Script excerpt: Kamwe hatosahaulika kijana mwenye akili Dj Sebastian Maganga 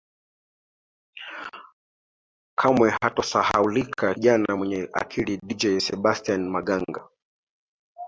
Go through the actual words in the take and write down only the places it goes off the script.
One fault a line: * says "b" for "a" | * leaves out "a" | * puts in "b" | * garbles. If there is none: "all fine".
all fine